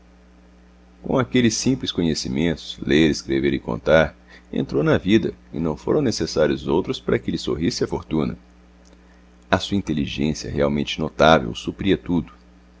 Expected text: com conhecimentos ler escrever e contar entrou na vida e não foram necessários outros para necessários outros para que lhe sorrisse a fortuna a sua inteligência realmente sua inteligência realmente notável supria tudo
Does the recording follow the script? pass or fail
fail